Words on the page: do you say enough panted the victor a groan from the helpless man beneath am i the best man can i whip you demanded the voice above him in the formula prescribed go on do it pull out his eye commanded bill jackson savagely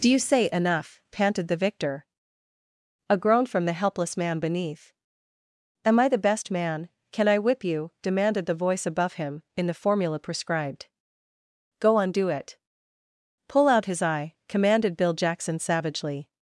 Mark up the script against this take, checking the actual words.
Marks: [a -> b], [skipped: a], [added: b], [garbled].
do you say enough panted the victor a groan from the helpless man beneath am i the best man can i whip you demanded the voice above him in the formula prescribed go on do it pull out his eye commanded bill jackson savagely